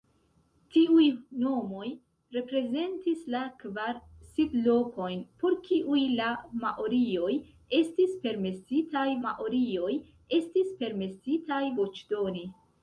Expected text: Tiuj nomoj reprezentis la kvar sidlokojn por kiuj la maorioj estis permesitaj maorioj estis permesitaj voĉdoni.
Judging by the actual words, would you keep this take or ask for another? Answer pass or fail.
pass